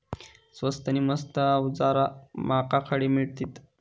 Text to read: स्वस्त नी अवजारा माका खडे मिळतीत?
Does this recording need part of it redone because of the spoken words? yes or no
yes